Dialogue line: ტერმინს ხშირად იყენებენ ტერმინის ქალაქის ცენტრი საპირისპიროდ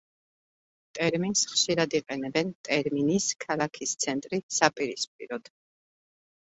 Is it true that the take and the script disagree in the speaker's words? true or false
false